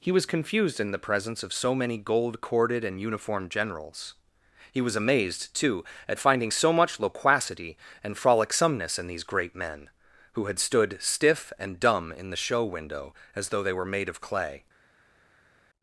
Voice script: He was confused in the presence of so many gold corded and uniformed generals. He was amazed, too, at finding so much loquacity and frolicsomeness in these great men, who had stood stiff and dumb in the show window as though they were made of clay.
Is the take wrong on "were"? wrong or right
right